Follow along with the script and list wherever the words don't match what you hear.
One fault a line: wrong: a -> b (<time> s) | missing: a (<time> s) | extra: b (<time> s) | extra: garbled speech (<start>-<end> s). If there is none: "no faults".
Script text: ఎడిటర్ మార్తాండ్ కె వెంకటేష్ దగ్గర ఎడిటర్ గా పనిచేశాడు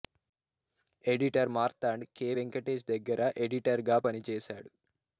no faults